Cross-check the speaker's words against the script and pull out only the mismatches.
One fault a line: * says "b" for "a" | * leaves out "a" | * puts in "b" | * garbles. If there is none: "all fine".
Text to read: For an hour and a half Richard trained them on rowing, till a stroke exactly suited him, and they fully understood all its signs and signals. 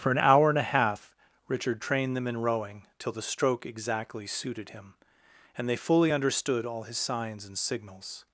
* says "in" for "on"
* says "the" for "a"
* says "his" for "its"